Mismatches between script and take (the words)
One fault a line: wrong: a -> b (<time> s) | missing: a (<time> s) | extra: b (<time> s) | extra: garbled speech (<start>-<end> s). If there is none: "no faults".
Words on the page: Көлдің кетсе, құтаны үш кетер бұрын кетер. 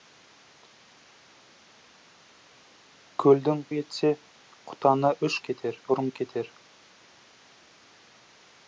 no faults